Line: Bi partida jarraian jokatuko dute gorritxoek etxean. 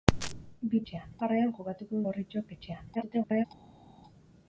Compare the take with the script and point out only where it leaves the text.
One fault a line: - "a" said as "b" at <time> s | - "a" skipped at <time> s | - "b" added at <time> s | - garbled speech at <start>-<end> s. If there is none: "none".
- "partida" said as "etxean" at 0.8 s
- "dute" skipped at 2.0 s
- garbled speech at 2.9-3.5 s